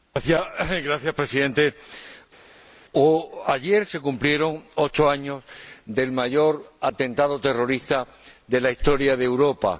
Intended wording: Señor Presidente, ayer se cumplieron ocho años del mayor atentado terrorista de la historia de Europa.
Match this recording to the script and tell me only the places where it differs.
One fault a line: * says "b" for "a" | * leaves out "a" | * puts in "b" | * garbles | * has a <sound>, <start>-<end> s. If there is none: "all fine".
all fine